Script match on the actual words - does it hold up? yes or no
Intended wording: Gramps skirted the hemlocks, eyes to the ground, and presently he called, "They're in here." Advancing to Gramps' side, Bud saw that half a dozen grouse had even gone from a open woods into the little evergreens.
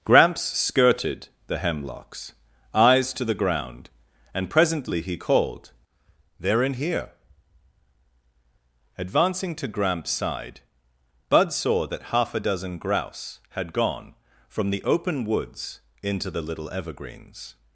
no